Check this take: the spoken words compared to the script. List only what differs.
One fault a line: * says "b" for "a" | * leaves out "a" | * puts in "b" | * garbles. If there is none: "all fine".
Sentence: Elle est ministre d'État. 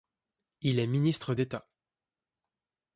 * says "Il" for "Elle"